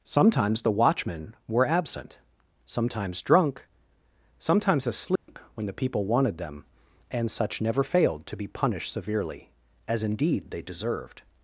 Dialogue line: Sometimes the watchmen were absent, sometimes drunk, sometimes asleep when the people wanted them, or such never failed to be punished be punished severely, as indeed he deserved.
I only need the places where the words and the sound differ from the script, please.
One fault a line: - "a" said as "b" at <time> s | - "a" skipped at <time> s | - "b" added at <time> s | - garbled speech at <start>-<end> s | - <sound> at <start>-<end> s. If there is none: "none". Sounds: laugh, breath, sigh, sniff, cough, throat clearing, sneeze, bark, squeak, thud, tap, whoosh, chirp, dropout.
- dropout at 5.2-5.3 s
- "or" said as "and" at 7.1 s
- "be punished" skipped at 8.9 s
- "he" said as "they" at 10.5 s